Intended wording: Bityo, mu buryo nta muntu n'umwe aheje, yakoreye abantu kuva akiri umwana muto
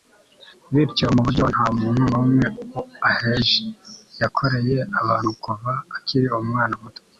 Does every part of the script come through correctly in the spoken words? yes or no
yes